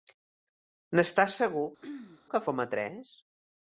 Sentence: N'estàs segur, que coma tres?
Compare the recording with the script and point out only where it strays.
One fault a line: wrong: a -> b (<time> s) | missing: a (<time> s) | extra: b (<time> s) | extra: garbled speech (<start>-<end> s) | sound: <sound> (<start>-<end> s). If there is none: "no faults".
sound: throat clearing (1.8-2.2 s)